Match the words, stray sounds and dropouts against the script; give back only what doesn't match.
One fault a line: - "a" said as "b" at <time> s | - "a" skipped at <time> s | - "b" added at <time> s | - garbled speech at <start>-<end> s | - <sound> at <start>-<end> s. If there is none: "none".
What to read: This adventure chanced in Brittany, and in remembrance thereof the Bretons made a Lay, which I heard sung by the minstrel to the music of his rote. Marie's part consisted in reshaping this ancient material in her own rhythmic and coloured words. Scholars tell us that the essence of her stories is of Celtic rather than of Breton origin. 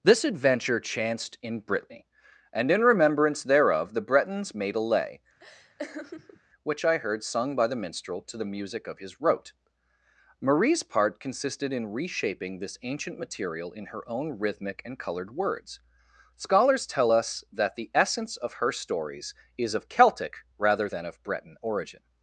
- laugh at 5.4-6.4 s